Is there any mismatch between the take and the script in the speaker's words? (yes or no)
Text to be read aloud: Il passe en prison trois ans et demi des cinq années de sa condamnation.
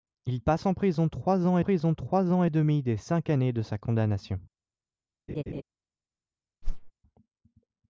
yes